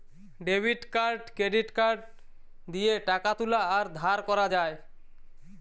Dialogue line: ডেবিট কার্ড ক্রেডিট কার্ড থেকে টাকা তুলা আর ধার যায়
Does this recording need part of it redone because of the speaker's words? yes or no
yes